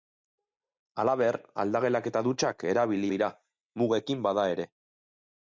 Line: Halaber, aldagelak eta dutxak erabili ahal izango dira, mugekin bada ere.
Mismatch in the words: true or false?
true